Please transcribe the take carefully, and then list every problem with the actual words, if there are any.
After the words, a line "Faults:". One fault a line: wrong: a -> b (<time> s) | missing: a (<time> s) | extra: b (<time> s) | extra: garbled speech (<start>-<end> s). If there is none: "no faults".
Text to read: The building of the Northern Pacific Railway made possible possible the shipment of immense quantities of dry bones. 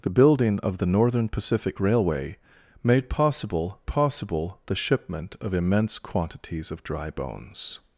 The building of the Northern Pacific Railway made possible possible the shipment of immense quantities of dry bones.
Faults:
no faults